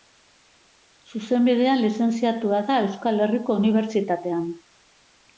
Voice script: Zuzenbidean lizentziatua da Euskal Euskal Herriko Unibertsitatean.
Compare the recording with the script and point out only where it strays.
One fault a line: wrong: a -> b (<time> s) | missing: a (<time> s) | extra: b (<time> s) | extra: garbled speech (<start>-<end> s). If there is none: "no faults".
missing: Euskal (3.2 s)